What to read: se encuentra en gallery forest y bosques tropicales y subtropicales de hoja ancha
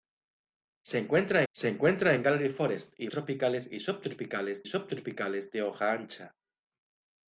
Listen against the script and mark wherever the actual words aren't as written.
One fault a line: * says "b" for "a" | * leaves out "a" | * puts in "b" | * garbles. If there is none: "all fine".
* puts in "se encuentra"
* leaves out "bosques"
* puts in "subtropicales"